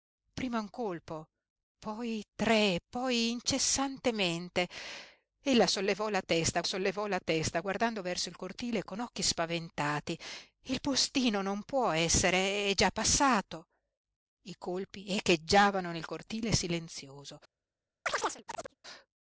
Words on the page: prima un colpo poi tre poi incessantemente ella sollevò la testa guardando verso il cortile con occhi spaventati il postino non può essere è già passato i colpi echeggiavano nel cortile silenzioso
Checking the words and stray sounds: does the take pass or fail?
fail